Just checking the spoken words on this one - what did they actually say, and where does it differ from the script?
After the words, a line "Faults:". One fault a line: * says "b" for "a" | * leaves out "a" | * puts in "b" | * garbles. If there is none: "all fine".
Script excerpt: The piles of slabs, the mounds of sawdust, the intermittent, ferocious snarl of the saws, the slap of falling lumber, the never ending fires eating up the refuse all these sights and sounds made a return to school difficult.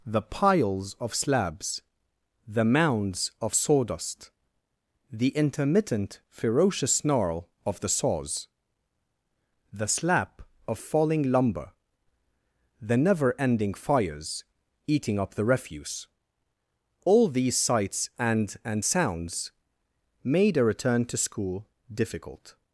The piles of slabs, the mounds of sawdust, the intermittent, ferocious snarl of the saws, the slap of falling lumber, the never ending fires eating up the refuse all these sights and and sounds made a return to school difficult.
Faults:
* puts in "and"